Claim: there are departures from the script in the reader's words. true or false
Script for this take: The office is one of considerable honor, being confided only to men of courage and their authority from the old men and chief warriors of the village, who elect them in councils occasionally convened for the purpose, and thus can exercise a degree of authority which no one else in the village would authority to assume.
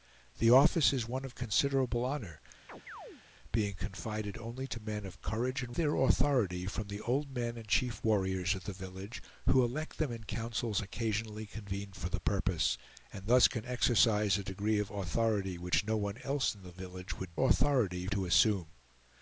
false